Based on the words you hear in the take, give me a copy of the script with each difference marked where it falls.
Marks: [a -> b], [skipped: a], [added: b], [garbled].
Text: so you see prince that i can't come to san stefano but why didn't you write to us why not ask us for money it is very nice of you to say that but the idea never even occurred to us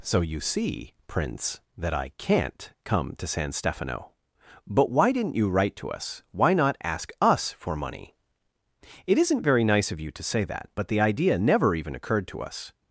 so you see prince that i can't come to san stefano but why didn't you write to us why not ask us for money it [is -> isn't] very nice of you to say that but the idea never even occurred to us